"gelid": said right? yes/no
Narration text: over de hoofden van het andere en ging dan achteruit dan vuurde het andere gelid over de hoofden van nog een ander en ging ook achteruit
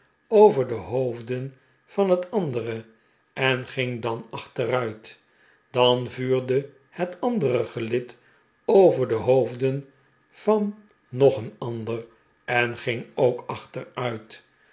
yes